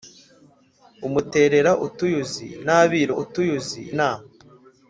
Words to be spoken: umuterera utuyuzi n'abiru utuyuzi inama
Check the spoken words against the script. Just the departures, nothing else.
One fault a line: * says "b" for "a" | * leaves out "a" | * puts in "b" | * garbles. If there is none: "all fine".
all fine